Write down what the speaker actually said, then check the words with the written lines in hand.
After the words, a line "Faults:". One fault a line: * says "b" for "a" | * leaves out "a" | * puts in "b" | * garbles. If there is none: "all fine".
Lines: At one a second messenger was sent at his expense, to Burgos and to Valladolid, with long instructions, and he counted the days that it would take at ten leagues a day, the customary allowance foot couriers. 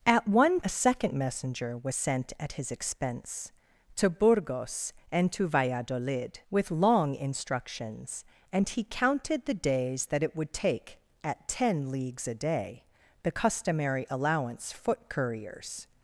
At one a second messenger was sent at his expense, to Burgos and to Valladolid, with long instructions, and he counted the days that it would take at ten leagues a day, the customary allowance foot couriers.
Faults:
all fine